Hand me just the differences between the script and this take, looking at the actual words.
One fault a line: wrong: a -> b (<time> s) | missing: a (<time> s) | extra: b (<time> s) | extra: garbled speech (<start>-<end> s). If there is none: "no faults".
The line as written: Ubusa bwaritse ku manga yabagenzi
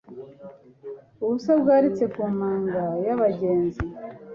no faults